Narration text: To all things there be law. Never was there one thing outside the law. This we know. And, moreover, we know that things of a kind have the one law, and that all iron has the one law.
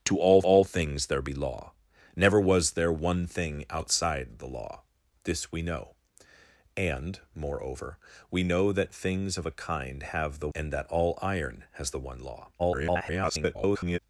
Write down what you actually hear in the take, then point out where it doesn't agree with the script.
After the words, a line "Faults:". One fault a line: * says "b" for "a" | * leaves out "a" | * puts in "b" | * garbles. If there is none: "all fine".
To all all things there be law. Never was there one thing outside the law. This we know. And, moreover, we know that things of a kind have the and that all iron has the one law. [garbled]
Faults:
* puts in "all"
* leaves out "one law"
* garbles